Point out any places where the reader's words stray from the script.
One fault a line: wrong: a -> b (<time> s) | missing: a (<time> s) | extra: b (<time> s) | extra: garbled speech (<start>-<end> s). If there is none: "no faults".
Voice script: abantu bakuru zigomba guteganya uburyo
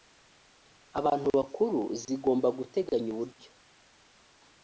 no faults